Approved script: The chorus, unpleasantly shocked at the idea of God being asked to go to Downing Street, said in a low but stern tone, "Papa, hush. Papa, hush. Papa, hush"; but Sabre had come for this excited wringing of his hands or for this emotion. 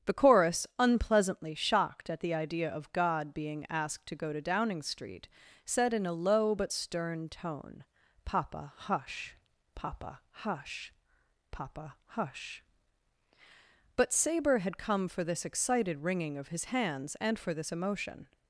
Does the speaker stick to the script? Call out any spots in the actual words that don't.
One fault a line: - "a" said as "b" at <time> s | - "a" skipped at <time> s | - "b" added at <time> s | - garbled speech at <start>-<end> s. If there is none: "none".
- "or" said as "and" at 17.2 s